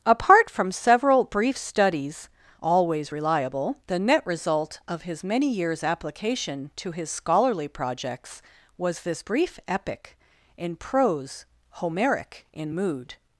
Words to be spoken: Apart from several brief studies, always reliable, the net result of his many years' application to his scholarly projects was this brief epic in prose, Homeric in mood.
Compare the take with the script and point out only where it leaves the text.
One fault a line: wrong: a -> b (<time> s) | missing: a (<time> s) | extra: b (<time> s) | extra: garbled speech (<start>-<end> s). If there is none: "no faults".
no faults